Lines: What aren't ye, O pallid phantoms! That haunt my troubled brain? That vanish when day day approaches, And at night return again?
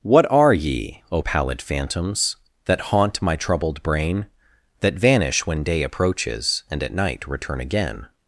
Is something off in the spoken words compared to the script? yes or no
yes